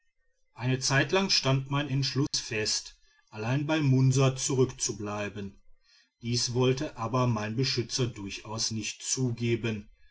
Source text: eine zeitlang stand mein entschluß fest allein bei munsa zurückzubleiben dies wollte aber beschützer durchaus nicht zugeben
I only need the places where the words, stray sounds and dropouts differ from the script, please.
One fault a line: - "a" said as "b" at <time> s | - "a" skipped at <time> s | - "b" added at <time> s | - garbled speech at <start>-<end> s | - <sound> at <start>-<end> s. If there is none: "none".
- dropout at 2.3-2.3 s
- "mein" added at 7.3 s